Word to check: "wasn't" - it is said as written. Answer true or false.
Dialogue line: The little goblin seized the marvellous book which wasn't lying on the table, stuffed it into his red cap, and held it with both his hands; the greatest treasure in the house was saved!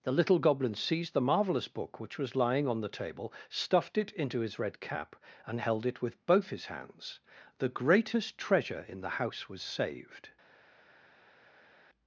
false